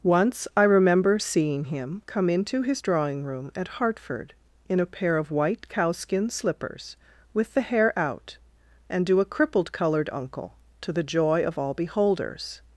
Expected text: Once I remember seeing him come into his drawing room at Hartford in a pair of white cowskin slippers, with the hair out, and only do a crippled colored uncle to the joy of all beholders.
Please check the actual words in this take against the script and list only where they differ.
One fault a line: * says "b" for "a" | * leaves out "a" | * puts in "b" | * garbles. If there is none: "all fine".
* leaves out "only"